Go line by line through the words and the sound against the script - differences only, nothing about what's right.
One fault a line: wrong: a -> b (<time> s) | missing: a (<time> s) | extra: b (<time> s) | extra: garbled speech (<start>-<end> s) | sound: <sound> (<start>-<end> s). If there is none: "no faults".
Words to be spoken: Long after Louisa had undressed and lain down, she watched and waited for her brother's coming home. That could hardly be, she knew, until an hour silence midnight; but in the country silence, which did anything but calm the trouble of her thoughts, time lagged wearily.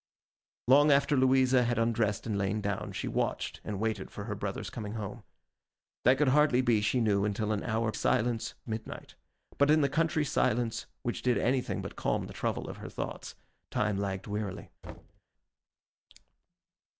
sound: thud (14.8-15.2 s)